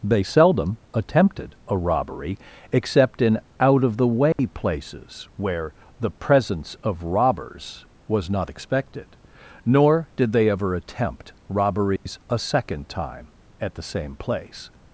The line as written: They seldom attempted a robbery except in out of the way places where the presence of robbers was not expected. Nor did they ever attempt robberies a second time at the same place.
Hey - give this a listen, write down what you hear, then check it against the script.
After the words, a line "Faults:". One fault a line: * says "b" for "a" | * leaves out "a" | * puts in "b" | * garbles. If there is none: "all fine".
They seldom attempted a robbery except in out of the way places where the presence of robbers was not expected. Nor did they ever attempt robberies a second time at the same place.
Faults:
all fine